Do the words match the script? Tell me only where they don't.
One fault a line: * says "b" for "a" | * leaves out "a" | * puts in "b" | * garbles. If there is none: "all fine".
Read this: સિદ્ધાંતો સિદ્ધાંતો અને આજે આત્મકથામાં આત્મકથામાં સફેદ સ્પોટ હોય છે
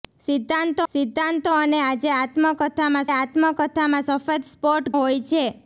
all fine